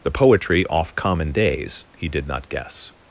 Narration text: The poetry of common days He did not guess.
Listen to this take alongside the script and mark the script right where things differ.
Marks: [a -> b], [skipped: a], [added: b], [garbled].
The poetry [of -> off] common days He did not guess.